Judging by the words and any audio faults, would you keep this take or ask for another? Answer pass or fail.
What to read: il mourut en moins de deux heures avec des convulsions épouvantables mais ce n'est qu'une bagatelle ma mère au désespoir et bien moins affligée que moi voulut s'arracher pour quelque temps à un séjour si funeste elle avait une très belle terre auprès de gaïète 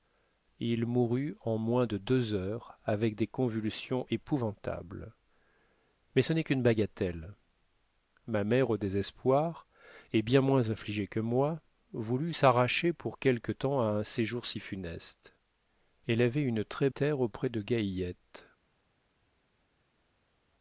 fail